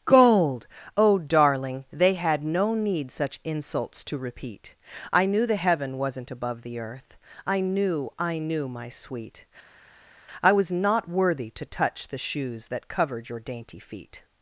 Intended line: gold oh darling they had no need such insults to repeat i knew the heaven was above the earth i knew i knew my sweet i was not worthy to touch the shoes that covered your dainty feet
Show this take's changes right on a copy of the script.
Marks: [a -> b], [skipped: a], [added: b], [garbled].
gold oh darling they had no need such insults to repeat i knew the heaven [was -> wasn't] above the earth i knew i knew my sweet i was not worthy to touch the shoes that covered your dainty feet